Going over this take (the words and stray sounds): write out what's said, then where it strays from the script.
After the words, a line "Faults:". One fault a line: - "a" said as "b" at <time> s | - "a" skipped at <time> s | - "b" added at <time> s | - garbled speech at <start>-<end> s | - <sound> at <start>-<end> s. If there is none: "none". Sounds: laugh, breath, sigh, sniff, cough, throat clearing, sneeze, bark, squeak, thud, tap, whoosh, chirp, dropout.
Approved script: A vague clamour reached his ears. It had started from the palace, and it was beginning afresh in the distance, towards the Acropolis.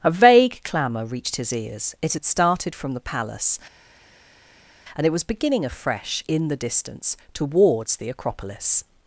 A vague clamour reached his ears. It had started from the palace, and it was beginning afresh in the distance, towards the Acropolis.
Faults:
none